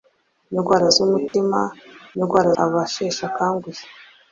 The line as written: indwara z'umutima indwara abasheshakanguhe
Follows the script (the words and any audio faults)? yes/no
no